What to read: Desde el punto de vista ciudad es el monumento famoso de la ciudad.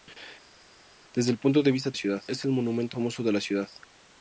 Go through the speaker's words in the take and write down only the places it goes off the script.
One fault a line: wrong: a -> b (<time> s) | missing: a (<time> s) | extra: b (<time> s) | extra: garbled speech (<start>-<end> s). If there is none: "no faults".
no faults